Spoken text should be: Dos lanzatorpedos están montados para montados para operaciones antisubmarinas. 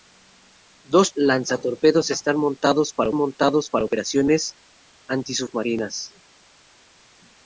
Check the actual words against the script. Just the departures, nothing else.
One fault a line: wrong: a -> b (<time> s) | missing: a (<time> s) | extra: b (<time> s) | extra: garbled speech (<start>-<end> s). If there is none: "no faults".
no faults